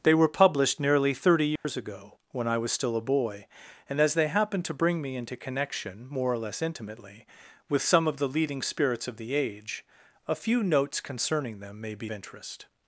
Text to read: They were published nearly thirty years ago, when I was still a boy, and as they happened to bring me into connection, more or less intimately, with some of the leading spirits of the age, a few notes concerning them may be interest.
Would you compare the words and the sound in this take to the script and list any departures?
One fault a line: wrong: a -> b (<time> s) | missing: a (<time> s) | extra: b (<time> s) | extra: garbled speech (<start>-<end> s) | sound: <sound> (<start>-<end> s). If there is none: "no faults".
sound: dropout (1.6-1.6 s)